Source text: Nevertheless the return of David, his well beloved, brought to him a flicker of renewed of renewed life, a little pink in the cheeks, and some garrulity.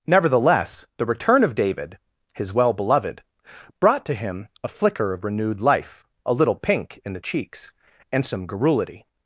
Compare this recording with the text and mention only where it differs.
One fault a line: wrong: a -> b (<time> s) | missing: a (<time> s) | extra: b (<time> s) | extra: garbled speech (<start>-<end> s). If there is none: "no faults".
missing: of renewed (5.6 s)